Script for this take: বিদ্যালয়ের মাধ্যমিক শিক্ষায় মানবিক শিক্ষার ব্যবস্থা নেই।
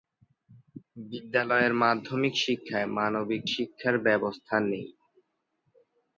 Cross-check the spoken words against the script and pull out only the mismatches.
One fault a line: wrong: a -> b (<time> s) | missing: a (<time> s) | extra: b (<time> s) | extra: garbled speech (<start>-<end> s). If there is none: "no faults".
no faults